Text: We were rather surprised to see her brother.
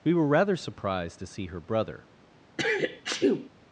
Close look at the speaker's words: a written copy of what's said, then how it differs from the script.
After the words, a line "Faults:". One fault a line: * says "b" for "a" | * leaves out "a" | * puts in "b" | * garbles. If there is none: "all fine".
We were rather surprised to see her brother.
Faults:
all fine